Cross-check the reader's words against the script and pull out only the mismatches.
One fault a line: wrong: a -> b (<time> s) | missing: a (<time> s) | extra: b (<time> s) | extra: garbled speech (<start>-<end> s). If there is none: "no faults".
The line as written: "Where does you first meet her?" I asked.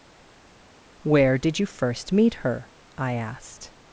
wrong: does -> did (1.4 s)